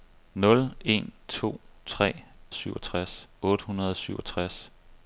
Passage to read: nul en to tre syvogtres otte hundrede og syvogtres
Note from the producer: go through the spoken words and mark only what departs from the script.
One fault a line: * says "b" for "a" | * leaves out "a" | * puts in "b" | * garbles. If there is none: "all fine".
all fine